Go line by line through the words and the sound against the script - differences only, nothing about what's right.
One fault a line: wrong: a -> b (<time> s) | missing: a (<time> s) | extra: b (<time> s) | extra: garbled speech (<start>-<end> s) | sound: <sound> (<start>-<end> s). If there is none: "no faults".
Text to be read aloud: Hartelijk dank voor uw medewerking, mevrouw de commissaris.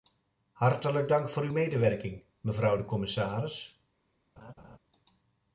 sound: laugh (4.4-4.8 s)